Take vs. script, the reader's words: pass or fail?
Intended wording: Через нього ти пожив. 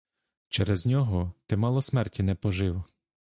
fail